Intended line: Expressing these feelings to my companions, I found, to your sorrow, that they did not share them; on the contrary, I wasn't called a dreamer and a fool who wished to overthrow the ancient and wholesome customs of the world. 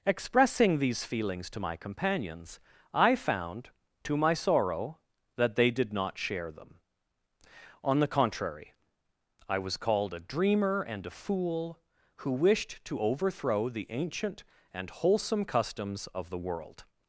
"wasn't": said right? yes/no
no